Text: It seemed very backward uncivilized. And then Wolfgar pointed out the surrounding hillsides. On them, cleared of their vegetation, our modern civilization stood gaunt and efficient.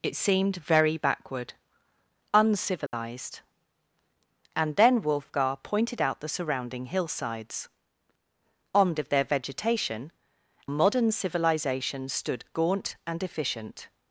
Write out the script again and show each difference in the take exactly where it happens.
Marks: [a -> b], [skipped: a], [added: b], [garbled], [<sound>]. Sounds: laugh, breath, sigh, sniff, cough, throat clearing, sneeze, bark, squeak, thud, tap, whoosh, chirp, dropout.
It seemed very backward uncivilized. [dropout] And then Wolfgar pointed out the surrounding hillsides. On [skipped: them, cleared] of their vegetation, [skipped: our] modern civilization stood gaunt and efficient.